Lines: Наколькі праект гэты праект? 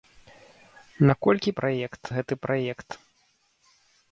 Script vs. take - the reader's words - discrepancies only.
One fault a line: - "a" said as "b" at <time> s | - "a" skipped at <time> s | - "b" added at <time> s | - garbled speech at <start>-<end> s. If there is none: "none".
none